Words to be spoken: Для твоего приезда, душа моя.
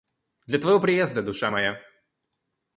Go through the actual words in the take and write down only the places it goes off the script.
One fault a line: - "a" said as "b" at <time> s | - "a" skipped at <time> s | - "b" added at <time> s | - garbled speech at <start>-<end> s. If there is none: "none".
none